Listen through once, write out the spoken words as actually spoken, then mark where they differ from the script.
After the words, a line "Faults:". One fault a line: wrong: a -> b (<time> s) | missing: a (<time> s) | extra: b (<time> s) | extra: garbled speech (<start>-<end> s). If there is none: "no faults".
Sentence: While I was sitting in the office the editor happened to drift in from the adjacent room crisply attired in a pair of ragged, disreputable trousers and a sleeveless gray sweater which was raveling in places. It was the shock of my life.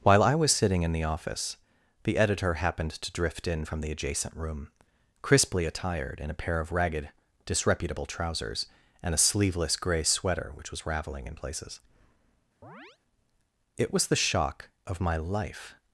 While I was sitting in the office the editor happened to drift in from the adjacent room crisply attired in a pair of ragged, disreputable trousers and a sleeveless gray sweater which was raveling in places. It was the shock of my life.
Faults:
no faults